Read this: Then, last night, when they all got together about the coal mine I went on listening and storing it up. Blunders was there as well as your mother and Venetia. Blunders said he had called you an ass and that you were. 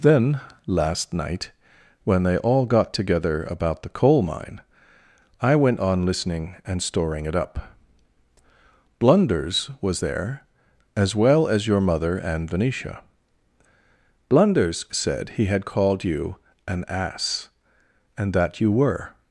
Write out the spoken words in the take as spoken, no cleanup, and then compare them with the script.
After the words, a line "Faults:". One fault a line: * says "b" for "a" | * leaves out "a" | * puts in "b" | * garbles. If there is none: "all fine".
Then, last night, when they all got together about the coal mine I went on listening and storing it up. Blunders was there as well as your mother and Venetia. Blunders said he had called you an ass and that you were.
Faults:
all fine